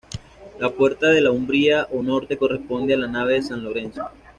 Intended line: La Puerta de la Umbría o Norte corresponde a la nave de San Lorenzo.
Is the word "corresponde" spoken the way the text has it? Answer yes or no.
yes